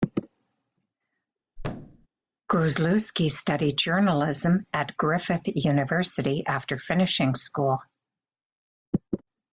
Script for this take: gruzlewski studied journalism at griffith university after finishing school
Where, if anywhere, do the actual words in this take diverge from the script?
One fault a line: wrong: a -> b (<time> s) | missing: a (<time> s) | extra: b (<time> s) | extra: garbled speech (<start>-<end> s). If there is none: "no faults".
no faults